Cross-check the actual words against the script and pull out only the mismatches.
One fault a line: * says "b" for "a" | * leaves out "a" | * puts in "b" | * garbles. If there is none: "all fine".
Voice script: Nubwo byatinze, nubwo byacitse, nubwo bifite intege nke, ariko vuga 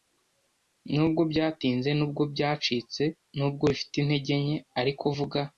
all fine